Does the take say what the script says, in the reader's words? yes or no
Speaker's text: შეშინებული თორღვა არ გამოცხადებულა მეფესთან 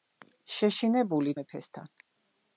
no